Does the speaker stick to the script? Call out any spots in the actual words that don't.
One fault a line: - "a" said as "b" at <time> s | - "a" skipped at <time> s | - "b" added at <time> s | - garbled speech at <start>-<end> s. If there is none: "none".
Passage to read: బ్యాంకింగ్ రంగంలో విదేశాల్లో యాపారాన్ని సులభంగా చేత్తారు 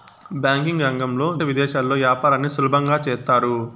none